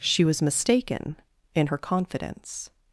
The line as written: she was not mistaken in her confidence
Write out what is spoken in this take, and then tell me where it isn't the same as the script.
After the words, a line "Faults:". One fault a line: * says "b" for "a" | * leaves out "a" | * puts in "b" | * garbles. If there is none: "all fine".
she was mistaken in her confidence
Faults:
* leaves out "not"